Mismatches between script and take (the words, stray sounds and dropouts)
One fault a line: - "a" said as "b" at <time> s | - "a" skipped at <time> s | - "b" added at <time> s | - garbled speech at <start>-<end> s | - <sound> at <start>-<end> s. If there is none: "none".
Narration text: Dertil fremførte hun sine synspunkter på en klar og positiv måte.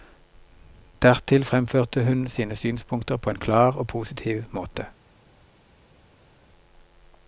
none